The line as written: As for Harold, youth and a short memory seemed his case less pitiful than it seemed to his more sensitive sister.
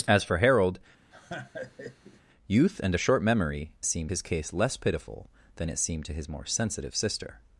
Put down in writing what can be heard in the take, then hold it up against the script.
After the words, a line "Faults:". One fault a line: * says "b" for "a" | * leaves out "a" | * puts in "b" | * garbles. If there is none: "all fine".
As for Harold, youth and a short memory seemed his case less pitiful than it seemed to his more sensitive sister.
Faults:
all fine